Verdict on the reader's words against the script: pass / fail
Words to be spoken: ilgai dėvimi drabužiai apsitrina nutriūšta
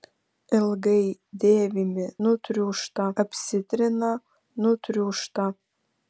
fail